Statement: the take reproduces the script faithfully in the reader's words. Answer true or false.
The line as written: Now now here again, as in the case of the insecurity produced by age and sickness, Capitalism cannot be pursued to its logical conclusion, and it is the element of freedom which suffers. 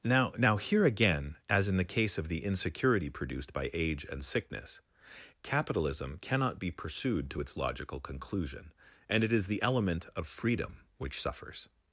true